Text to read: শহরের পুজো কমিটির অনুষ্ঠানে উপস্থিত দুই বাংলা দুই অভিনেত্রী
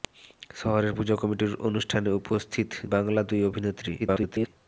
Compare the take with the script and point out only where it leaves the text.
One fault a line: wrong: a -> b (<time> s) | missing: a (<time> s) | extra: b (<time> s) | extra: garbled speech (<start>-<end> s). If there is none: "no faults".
missing: দুই (2.7 s)
extra: garbled speech (4.0-4.5 s)